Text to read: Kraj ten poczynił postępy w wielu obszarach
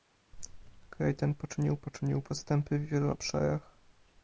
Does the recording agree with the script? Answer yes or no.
no